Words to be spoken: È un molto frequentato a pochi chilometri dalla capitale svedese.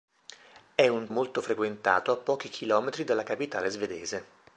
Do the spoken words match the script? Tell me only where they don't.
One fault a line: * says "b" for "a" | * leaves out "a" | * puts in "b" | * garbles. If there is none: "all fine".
all fine